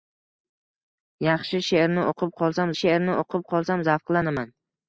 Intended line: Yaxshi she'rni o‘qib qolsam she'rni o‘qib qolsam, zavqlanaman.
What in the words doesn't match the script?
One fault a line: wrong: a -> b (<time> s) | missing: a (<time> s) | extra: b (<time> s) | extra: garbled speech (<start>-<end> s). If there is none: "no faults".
no faults